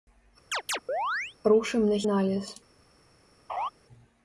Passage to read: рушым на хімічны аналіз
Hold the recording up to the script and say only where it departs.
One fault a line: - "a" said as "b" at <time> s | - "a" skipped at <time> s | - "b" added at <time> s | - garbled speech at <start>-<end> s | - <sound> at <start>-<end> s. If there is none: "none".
- chirp at 0.5-1.4 s
- "хімічны" skipped at 2.0 s
- laugh at 3.5-3.7 s